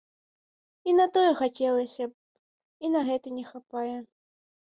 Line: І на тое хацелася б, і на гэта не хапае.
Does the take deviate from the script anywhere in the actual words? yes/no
no